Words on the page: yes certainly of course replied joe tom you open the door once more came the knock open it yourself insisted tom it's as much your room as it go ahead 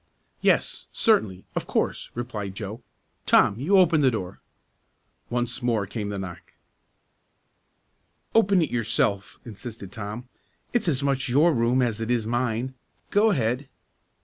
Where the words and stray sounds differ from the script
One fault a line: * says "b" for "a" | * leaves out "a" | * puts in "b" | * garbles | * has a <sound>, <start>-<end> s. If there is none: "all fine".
* puts in "is mine"